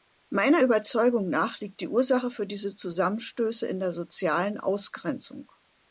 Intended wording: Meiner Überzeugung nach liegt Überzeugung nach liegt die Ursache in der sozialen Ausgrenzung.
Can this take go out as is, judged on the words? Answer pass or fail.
fail